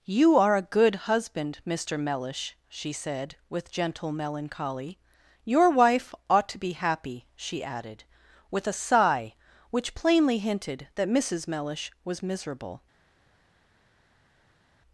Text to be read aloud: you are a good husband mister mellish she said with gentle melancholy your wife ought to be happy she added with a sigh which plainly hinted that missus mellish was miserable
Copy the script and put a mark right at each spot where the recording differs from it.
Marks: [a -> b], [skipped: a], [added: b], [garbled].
you are a good husband mister mellish she said with gentle melancholy your wife ought to be happy she added with a sigh which plainly hinted that missus mellish was miserable